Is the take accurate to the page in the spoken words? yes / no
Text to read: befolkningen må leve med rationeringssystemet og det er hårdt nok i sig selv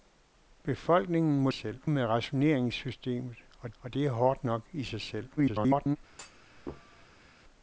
no